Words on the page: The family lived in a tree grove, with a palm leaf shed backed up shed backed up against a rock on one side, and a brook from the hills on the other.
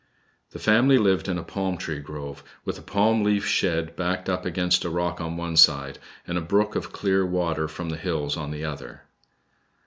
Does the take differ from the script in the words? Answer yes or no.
yes